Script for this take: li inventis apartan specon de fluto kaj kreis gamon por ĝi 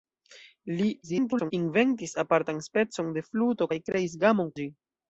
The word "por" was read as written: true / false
false